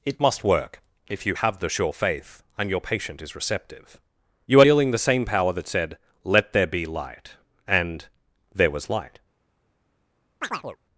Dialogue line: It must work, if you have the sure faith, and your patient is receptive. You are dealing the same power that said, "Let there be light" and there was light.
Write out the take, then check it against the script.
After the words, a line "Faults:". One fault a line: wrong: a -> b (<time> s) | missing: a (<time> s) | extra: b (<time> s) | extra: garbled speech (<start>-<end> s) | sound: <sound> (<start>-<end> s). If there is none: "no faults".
It must work, if you have the sure faith, and your patient is receptive. You are dealing the same power that said, "Let there be light" and there was light.
Faults:
sound: chirp (10.4-10.8 s)